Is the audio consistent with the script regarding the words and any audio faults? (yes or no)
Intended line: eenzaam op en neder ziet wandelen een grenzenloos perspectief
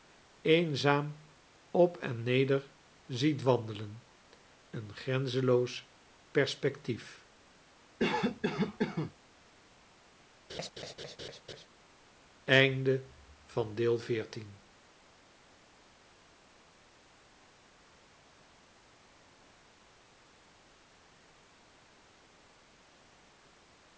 no